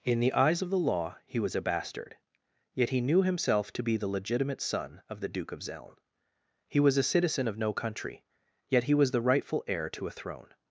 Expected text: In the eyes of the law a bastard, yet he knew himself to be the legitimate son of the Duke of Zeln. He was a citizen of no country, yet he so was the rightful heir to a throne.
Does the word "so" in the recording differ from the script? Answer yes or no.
yes